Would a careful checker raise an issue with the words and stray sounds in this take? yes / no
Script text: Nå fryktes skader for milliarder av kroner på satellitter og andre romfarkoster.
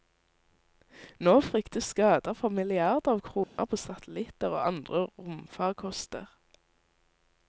yes